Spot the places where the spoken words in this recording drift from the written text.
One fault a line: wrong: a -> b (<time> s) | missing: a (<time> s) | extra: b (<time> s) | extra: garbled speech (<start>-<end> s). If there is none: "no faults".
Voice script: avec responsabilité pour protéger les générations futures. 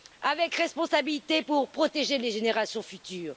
no faults